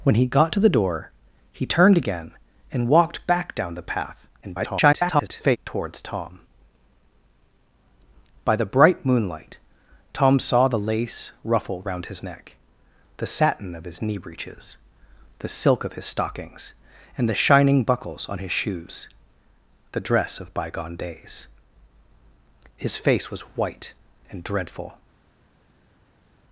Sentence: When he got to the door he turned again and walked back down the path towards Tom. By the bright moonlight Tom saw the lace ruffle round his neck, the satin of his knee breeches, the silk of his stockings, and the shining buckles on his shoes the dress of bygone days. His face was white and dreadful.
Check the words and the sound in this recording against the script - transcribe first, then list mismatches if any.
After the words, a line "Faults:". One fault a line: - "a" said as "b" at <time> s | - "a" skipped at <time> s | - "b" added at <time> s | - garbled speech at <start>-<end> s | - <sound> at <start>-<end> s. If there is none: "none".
When he got to the door he turned again and walked back down the path [garbled] towards Tom. By the bright moonlight Tom saw the lace ruffle round his neck, the satin of his knee breeches, the silk of his stockings, and the shining buckles on his shoes the dress of bygone days. His face was white and dreadful.
Faults:
- garbled speech at 4.4-5.6 s